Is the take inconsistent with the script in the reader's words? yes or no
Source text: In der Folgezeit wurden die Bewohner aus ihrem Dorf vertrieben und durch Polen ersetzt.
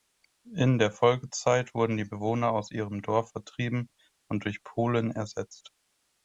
no